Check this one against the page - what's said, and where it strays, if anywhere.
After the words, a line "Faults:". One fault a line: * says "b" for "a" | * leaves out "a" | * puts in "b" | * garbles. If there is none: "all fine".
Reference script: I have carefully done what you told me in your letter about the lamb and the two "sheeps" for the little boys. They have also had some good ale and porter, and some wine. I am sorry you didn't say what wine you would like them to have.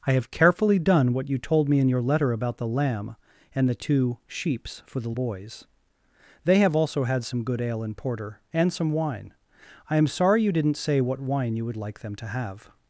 I have carefully done what you told me in your letter about the lamb and the two "sheeps" for the boys. They have also had some good ale and porter, and some wine. I am sorry you didn't say what wine you would like them to have.
Faults:
* leaves out "little"